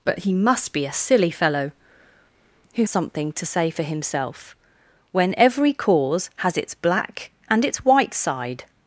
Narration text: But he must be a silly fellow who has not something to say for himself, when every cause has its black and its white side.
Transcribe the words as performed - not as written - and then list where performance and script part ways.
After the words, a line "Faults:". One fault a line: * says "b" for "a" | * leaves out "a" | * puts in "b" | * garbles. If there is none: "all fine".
But he must be a silly fellow who something to say for himself, when every cause has its black and its white side.
Faults:
* leaves out "has not"